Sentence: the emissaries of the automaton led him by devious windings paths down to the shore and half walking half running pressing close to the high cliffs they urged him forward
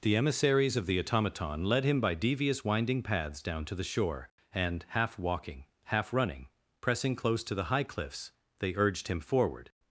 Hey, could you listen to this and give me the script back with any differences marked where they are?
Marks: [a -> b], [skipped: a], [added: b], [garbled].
the emissaries of the automaton led him by devious [windings -> winding] paths down to the shore and half walking half running pressing close to the high cliffs they urged him forward